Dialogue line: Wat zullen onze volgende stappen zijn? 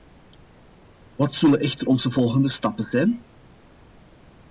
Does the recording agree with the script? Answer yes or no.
no